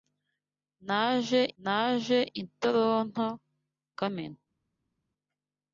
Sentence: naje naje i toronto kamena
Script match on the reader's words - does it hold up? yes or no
yes